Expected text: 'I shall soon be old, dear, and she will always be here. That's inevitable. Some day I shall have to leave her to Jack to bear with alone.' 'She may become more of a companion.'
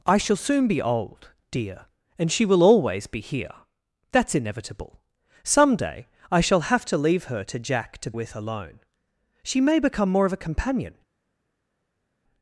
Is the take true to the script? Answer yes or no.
no